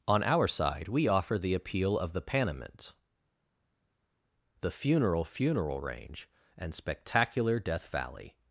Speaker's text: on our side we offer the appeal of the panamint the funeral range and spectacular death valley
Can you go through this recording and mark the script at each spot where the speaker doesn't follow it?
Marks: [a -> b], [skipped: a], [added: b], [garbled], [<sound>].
on our side we offer the appeal of the panamint the funeral [added: funeral] range and spectacular death valley